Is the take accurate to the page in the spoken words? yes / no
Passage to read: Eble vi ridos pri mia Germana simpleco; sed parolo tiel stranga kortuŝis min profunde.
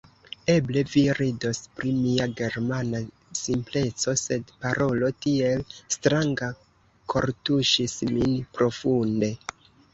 yes